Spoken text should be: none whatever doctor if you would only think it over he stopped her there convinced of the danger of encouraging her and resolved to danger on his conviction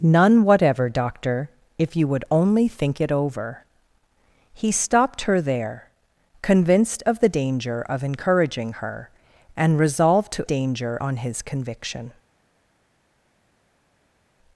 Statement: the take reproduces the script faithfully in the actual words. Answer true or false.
true